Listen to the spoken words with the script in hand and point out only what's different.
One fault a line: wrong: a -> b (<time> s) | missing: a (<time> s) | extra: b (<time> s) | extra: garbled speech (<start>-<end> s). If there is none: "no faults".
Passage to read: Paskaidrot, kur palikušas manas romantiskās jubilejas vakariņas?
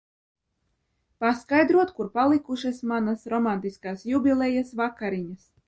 no faults